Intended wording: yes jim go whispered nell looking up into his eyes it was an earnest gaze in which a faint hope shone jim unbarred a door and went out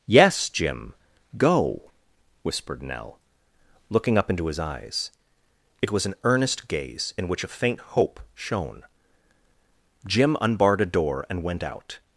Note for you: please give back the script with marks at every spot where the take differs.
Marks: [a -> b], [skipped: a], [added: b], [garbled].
yes jim go whispered nell looking up into his eyes it was an earnest gaze in which a faint hope shone jim unbarred a door and went out